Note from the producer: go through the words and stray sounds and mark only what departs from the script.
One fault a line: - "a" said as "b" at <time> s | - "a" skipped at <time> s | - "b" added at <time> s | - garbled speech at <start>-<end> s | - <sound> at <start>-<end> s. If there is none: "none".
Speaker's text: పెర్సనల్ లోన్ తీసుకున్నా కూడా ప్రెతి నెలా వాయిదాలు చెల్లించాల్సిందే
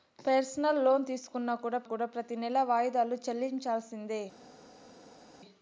- "కూడా" added at 1.8 s